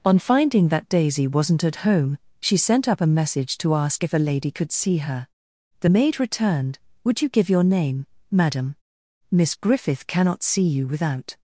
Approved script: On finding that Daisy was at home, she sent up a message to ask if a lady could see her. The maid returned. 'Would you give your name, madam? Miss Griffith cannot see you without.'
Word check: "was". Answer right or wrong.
wrong